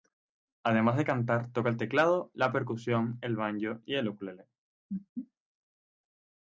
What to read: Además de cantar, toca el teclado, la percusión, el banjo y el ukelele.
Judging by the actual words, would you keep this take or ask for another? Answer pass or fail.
pass